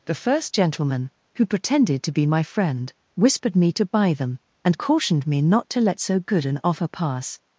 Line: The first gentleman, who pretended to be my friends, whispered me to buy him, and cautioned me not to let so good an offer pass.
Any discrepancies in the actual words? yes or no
yes